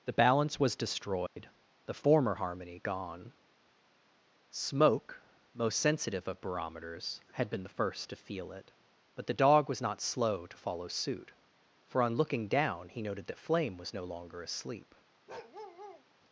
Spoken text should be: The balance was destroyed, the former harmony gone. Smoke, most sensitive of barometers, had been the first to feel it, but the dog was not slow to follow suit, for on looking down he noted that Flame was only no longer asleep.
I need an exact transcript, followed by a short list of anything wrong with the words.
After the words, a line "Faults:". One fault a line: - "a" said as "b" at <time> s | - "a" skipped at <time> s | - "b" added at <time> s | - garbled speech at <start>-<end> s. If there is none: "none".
The balance was destroyed, the former harmony gone. Smoke, most sensitive of barometers, had been the first to feel it, but the dog was not slow to follow suit, for on looking down he noted that Flame was no longer asleep.
Faults:
- "only" skipped at 13.9 s